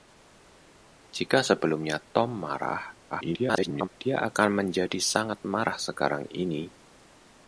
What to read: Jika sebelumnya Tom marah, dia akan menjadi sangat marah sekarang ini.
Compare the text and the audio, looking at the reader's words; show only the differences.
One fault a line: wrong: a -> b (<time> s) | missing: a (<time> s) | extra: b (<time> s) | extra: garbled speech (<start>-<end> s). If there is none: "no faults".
extra: garbled speech (3.1-3.9 s)